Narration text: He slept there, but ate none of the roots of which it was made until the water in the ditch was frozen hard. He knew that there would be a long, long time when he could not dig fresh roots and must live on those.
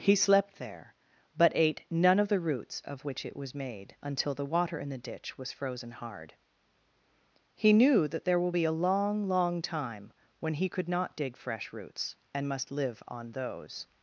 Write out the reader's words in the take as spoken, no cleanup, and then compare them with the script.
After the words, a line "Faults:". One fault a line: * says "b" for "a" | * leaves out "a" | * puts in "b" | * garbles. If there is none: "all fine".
He slept there, but ate none of the roots of which it was made until the water in the ditch was frozen hard. He knew that there will be a long, long time when he could not dig fresh roots and must live on those.
Faults:
* says "will" for "would"